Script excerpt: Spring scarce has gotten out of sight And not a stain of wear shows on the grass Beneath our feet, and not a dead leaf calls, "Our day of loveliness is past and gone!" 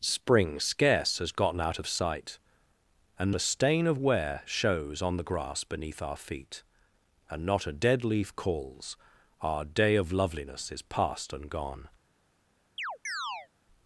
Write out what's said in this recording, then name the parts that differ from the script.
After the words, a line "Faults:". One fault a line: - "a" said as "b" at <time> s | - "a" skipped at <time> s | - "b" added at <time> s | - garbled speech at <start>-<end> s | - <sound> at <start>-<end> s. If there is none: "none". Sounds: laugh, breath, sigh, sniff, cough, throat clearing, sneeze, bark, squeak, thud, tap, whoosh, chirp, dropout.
Spring scarce has gotten out of sight And a stain of wear shows on the grass Beneath our feet, and not a dead leaf calls, "Our day of loveliness is past and gone!"
Faults:
- "not" skipped at 3.4 s
- chirp at 12.8-13.5 s